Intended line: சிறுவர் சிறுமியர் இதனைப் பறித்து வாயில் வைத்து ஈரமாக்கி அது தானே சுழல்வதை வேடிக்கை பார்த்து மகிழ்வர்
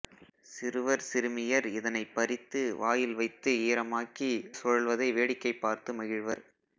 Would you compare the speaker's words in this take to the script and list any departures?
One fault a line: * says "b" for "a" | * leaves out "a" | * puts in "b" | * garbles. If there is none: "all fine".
* leaves out "அது தானே"